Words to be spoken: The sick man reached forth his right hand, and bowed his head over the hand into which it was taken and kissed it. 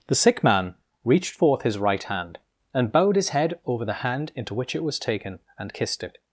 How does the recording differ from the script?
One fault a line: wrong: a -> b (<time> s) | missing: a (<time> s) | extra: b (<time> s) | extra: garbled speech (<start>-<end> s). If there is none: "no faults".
no faults